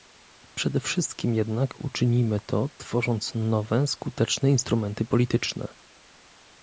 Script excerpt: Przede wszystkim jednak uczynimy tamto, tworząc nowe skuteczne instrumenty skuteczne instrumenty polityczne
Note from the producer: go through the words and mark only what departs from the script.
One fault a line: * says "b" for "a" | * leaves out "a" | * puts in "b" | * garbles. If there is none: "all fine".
* says "to" for "tamto"
* leaves out "skuteczne instrumenty"